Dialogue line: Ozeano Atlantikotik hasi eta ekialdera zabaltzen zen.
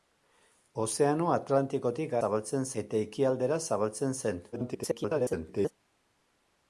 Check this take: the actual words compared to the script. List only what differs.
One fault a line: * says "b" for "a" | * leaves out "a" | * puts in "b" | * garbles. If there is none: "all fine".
* says "zabaltzen" for "hasi"
* garbles